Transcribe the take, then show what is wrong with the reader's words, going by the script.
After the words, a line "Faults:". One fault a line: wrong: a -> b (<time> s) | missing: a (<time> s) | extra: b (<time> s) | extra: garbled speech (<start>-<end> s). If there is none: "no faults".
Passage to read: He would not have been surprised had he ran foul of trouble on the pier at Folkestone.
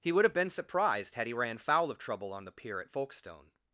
He would have been surprised had he ran foul of trouble on the pier at Folkestone.
Faults:
missing: not (0.2 s)